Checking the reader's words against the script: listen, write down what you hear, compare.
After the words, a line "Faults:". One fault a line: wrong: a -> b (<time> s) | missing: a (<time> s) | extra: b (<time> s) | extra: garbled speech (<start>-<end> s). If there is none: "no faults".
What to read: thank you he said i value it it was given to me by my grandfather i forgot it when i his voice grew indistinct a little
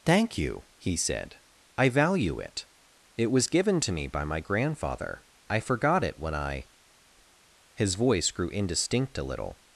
thank you he said i value it it was given to me by my grandfather i forgot it when i his voice grew indistinct a little
Faults:
no faults